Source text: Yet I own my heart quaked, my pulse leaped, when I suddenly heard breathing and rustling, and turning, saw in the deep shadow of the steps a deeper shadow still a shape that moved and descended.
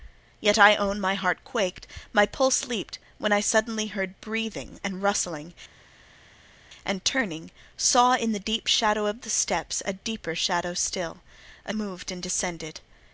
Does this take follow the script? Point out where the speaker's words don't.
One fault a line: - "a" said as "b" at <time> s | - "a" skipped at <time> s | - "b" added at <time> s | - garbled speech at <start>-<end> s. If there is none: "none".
- "shape that" skipped at 11.7 s